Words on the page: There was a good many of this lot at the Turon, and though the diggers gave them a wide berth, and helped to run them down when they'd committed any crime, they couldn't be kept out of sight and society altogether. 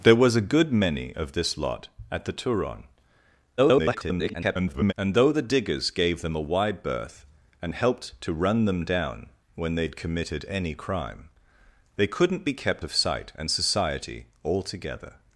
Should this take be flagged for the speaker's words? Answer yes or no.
yes